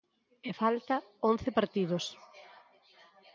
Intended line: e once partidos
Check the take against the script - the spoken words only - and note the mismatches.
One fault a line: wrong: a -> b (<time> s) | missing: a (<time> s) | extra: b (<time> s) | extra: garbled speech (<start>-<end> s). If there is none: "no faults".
extra: falta (0.6 s)